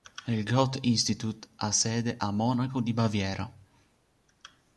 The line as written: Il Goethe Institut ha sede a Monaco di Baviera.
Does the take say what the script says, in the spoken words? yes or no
yes